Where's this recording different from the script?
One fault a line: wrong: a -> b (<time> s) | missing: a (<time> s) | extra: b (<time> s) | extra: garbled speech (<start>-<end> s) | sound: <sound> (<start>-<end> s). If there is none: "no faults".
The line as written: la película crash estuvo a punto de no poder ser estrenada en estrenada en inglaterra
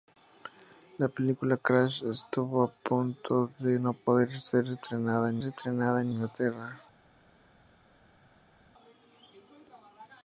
no faults